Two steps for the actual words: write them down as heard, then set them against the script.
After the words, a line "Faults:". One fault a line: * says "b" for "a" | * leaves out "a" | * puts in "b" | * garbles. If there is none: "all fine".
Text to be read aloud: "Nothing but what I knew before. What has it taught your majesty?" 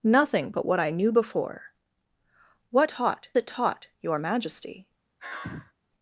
"Nothing but what I knew before. What taught it taught your majesty?"
Faults:
* says "taught" for "has"